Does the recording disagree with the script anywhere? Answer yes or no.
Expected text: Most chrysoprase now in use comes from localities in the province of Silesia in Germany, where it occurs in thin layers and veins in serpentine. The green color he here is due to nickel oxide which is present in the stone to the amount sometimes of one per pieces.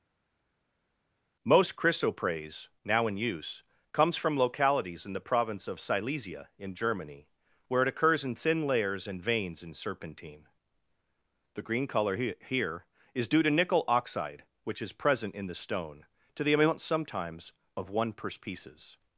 no